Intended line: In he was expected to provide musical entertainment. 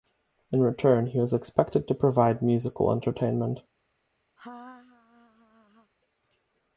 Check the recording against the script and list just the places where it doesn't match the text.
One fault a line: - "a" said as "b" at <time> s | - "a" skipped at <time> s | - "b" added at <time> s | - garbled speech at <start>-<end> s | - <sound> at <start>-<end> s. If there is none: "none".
- "return" added at 0.6 s
- laugh at 4.4-5.9 s